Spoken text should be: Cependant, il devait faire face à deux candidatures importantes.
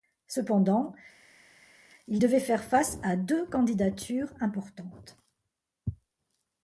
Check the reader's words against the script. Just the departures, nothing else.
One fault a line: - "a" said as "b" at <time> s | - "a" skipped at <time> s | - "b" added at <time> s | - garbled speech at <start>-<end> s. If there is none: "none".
none